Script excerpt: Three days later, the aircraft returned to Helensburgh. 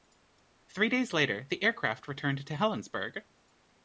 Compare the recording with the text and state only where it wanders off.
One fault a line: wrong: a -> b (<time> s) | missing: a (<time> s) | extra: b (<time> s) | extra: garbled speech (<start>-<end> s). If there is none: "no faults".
no faults